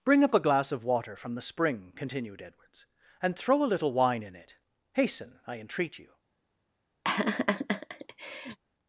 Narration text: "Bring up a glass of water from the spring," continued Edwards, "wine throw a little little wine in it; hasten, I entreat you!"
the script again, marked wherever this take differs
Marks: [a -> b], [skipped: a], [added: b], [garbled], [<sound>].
"Bring up a glass of water from the spring," continued Edwards, ["wine -> and] throw a little [skipped: little] wine in it; hasten, I entreat you!" [laugh]